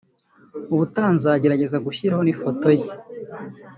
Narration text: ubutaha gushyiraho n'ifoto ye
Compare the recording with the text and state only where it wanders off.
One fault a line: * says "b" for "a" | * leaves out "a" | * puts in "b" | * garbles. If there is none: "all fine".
* puts in "nzagerageza"